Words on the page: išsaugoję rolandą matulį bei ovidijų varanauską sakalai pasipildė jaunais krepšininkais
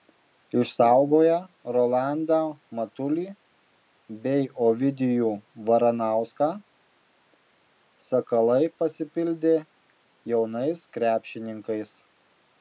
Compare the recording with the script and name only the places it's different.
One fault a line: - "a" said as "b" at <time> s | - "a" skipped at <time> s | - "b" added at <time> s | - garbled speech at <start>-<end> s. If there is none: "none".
none